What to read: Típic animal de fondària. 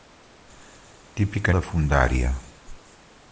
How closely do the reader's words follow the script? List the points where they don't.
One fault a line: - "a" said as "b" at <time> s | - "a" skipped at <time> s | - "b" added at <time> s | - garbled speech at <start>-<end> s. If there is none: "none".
- "animal" skipped at 1.5 s